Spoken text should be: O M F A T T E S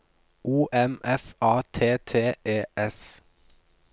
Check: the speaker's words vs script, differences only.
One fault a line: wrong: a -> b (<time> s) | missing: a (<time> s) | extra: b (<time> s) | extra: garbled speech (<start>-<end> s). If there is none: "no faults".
no faults